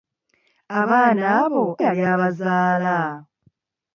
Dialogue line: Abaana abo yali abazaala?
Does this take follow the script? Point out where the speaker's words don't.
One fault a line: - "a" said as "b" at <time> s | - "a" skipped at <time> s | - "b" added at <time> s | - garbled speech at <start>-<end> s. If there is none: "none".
none